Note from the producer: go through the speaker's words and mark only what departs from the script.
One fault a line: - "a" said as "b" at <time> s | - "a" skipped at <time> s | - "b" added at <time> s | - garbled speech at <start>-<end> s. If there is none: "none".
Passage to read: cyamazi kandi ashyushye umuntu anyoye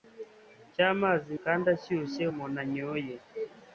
none